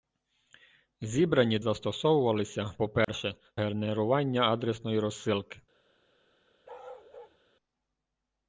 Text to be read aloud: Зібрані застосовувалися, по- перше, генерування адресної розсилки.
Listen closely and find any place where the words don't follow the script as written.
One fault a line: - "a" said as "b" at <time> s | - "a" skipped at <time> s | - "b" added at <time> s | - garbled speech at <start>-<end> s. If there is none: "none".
none